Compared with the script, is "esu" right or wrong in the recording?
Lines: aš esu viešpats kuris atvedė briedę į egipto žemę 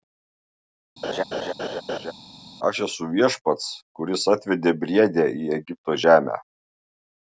right